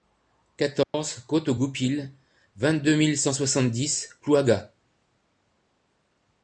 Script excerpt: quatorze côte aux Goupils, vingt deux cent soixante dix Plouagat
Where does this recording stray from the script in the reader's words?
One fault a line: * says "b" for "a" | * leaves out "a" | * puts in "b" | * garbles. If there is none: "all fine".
* puts in "mille"